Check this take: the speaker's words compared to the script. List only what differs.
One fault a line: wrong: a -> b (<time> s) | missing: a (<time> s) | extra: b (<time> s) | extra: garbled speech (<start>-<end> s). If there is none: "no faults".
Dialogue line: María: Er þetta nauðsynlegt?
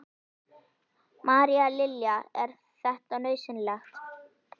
extra: Lilja (1.8 s)